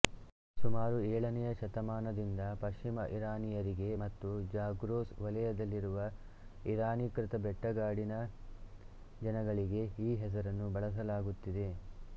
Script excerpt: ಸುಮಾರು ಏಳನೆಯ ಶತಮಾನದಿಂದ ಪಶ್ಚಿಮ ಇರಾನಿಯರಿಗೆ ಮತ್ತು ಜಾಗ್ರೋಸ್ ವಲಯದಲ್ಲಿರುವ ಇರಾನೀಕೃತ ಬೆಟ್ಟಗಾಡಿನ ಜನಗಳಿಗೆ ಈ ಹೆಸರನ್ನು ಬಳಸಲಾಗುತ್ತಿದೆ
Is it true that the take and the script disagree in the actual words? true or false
false